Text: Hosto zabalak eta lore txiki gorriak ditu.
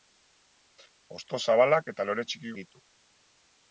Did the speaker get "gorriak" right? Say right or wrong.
wrong